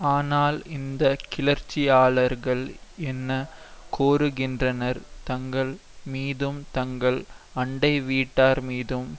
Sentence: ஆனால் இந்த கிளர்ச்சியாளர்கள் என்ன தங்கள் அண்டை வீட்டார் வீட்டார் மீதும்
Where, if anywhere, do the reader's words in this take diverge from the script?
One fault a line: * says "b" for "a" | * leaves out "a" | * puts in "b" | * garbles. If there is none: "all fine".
* puts in "கோருகின்றனர்"
* puts in "மீதும் தங்கள்"
* leaves out "வீட்டார்"